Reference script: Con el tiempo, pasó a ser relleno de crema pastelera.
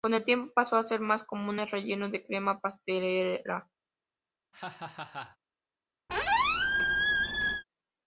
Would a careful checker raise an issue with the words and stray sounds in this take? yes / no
yes